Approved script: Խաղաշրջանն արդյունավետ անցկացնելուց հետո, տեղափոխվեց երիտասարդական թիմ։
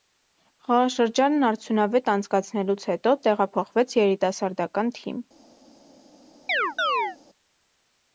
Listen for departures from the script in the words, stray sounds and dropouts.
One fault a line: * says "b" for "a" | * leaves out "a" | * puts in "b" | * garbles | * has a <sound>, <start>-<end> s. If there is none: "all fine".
* has a chirp, 6.5-7.2 s